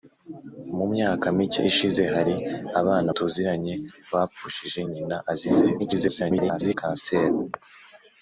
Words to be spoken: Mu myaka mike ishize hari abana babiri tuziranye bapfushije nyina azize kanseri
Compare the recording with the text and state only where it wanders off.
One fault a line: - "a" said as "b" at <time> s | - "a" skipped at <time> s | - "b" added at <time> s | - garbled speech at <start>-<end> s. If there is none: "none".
- "babiri" skipped at 3.1 s
- garbled speech at 5.8-6.7 s